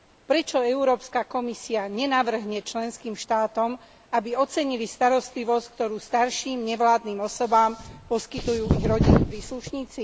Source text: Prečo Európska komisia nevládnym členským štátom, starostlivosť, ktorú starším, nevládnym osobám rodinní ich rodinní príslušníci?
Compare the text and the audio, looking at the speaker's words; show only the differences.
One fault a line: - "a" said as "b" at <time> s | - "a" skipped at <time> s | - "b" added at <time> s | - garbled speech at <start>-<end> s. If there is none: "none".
- "nevládnym" said as "nenavrhne" at 1.9 s
- "aby ocenili" added at 4.1 s
- "rodinní" said as "poskytujú" at 8.1 s